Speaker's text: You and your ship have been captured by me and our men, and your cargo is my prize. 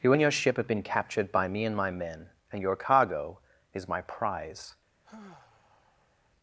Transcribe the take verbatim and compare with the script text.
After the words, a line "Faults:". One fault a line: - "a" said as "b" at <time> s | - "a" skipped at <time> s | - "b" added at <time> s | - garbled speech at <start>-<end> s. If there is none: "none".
You and your ship have been captured by me and my men, and your cargo is my prize.
Faults:
- "our" said as "my" at 1.7 s